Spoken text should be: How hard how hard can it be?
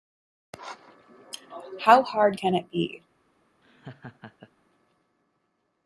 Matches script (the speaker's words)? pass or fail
fail